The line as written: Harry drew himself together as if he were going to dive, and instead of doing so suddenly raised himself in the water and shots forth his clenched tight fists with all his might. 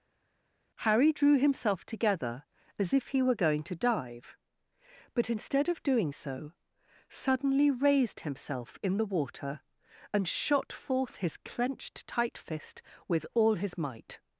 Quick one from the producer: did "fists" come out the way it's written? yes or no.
no